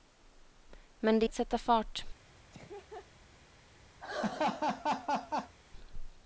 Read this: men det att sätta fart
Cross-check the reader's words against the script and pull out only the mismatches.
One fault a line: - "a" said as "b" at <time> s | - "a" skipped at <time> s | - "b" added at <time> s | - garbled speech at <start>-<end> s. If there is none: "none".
none